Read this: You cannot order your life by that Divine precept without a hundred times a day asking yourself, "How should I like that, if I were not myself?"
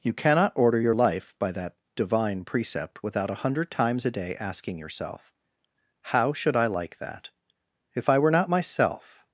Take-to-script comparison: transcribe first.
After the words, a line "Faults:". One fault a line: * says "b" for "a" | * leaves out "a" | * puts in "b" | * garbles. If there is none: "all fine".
You cannot order your life by that Divine precept without a hundred times a day asking yourself, "How should I like that, if I were not myself?"
Faults:
all fine